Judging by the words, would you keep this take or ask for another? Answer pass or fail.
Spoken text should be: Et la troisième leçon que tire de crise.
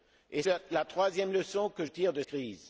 pass